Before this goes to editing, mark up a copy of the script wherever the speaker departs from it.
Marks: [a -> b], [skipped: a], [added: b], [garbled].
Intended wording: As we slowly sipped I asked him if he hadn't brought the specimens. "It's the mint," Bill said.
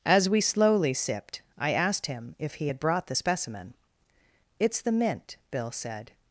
As we slowly sipped I asked him if he [hadn't -> had] brought the [specimens. -> specimen] "It's the mint," Bill said.